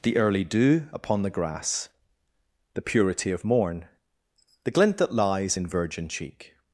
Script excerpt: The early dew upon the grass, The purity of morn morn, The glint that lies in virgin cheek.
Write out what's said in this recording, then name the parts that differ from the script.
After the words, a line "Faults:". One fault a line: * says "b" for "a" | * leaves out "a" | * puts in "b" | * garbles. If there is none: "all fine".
The early dew upon the grass, The purity of morn, The glint that lies in virgin cheek.
Faults:
* leaves out "morn"